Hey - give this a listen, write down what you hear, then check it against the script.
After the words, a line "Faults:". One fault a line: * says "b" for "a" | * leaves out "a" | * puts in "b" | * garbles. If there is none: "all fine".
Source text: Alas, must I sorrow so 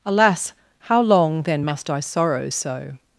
Alas, how long, then, must I sorrow so
Faults:
* puts in "how long then"